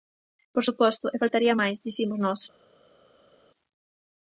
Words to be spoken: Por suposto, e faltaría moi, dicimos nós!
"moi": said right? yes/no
no